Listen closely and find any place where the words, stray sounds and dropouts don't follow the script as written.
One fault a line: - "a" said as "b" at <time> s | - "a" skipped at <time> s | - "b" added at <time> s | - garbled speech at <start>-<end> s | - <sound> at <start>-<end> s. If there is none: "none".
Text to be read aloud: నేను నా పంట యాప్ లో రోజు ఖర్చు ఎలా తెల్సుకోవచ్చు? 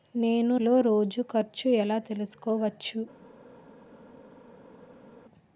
- "నా పంట యాప్" skipped at 0.6 s